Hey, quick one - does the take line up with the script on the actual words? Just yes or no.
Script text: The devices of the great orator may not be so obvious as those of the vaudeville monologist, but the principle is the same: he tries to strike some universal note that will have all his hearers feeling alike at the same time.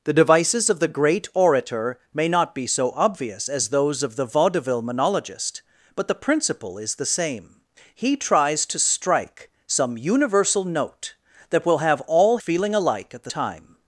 no